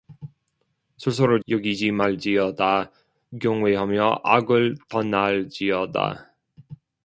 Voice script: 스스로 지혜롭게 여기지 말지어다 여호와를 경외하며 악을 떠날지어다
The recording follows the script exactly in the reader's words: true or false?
false